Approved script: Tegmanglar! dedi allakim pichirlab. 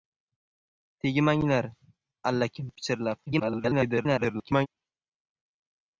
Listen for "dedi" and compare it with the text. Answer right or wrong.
wrong